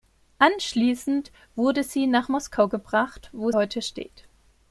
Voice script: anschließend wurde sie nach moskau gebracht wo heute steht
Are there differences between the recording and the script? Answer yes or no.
no